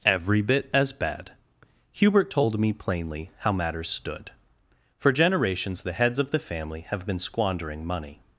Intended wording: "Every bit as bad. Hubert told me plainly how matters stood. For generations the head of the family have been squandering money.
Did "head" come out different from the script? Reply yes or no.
yes